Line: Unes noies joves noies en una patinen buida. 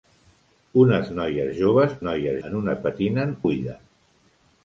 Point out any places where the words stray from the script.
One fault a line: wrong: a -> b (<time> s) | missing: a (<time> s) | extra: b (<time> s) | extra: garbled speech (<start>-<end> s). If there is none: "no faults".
no faults